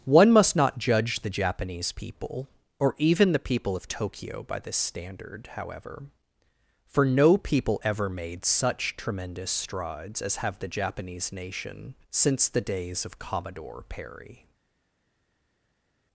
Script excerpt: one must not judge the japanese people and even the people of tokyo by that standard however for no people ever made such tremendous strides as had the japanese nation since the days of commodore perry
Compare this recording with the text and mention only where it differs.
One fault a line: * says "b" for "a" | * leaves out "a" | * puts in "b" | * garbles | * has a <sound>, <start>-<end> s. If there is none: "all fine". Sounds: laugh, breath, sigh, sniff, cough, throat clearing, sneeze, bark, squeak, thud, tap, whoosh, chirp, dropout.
* says "or" for "and"
* says "this" for "that"
* says "have" for "had"